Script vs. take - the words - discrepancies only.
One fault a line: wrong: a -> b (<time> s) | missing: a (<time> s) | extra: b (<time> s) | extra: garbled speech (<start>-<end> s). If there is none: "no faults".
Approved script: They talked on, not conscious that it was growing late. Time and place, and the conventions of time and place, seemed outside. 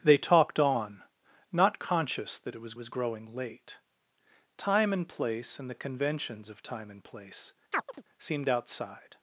extra: was (2.8 s)